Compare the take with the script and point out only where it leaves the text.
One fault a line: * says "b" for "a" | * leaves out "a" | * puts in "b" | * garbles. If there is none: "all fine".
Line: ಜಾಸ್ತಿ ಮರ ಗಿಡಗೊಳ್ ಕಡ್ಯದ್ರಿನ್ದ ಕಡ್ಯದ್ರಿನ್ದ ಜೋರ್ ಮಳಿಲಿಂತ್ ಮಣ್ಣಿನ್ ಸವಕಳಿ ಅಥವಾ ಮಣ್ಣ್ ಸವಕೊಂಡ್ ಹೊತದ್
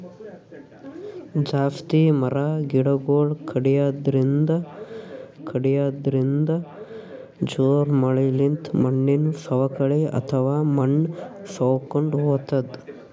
all fine